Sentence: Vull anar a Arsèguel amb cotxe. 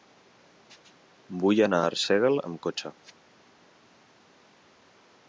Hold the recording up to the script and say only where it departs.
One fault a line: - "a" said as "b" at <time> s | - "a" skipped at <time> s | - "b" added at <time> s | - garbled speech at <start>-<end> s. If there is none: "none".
none